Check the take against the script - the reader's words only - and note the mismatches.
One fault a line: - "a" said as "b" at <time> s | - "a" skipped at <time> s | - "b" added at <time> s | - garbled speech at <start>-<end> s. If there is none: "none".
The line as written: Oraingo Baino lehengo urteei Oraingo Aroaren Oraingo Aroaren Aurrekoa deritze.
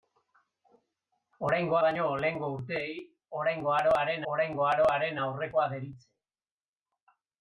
none